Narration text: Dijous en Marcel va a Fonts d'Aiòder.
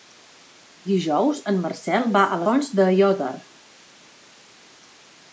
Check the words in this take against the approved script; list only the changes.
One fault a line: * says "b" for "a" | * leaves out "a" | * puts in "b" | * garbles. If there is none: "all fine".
all fine